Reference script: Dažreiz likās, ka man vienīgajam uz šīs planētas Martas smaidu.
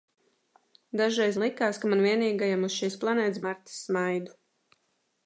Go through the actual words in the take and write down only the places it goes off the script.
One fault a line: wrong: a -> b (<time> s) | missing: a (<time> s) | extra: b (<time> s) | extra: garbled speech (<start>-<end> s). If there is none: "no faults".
no faults